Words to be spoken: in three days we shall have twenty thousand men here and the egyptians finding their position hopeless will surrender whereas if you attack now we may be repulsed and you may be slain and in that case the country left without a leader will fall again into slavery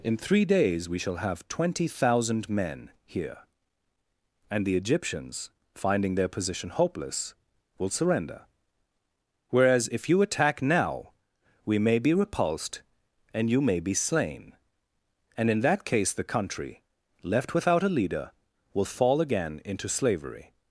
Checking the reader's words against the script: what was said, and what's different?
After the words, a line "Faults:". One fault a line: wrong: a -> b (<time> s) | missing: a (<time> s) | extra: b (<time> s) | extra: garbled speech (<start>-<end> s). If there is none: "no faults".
in three days we shall have twenty thousand men here and the egyptians finding their position hopeless will surrender whereas if you attack now we may be repulsed and you may be slain and in that case the country left without a leader will fall again into slavery
Faults:
no faults